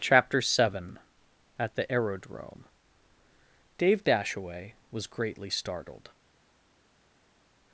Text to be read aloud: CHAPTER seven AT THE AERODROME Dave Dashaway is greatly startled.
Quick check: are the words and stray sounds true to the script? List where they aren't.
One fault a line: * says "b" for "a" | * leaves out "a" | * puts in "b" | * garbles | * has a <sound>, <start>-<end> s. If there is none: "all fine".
* says "was" for "is"